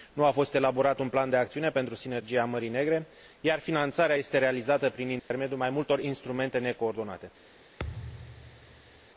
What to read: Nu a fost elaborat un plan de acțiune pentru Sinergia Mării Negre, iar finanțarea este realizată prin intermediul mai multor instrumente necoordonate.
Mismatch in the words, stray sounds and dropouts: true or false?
true